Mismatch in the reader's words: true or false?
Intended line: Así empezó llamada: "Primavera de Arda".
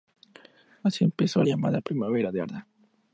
false